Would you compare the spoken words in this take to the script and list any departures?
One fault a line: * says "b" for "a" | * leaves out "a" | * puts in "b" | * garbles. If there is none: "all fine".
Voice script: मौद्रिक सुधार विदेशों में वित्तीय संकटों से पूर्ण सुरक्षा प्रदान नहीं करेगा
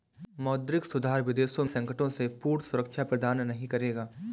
* leaves out "में वित्तीय"